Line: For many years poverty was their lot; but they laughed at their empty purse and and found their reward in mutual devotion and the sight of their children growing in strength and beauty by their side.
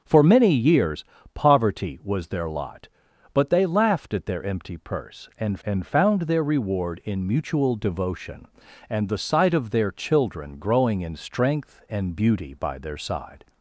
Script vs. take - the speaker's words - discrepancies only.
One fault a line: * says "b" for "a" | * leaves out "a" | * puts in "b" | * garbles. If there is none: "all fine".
all fine